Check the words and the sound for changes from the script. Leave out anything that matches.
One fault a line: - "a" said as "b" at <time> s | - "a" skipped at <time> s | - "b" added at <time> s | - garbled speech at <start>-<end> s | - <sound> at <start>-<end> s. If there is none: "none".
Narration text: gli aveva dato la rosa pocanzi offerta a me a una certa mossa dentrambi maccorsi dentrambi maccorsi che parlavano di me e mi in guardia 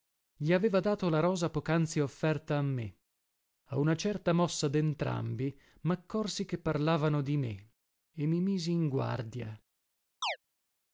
- "dentrambi maccorsi" skipped at 6.5 s
- "misi" added at 8.4 s
- chirp at 10.2-10.4 s